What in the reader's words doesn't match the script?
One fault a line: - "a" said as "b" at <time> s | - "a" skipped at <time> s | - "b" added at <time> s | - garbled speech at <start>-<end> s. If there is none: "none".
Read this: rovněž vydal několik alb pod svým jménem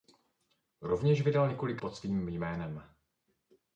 - "alb" skipped at 1.8 s